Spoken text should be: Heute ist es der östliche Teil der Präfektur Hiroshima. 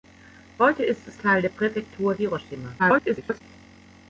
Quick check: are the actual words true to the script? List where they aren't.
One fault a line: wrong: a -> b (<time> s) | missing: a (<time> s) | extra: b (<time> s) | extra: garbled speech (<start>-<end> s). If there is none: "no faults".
missing: der östliche (1.1 s)
extra: garbled speech (2.8-3.4 s)